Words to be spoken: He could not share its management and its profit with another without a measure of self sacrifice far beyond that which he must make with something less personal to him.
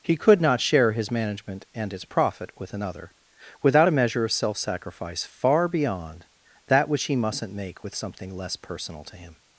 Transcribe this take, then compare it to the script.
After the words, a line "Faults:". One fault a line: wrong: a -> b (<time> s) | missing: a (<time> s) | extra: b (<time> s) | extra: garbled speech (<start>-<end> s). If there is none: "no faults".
He could not share his management and its profit with another without a measure of self sacrifice far beyond that which he mustn't make with something less personal to him.
Faults:
wrong: its -> his (0.9 s)
wrong: must -> mustn't (7.2 s)